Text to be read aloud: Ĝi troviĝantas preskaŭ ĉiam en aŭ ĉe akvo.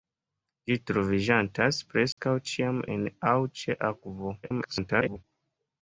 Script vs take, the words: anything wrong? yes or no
yes